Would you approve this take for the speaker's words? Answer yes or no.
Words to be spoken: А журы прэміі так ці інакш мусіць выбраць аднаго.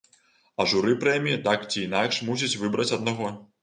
yes